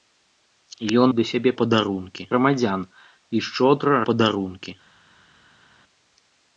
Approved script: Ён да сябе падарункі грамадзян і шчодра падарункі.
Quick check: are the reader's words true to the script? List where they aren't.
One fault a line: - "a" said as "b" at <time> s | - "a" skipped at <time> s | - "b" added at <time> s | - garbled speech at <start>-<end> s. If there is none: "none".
none